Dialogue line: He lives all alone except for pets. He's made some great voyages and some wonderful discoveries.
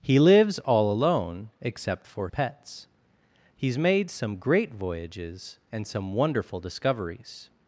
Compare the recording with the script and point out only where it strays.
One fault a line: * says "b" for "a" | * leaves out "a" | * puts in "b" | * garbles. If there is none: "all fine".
all fine